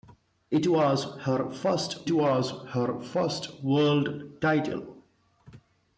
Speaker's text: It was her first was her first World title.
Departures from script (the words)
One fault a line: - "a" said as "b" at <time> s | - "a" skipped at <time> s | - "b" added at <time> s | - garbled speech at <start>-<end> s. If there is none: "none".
none